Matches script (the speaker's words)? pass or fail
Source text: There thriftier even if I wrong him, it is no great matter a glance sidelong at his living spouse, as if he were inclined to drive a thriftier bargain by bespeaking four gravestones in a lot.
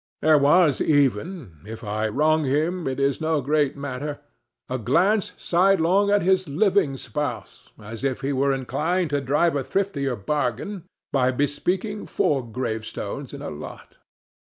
fail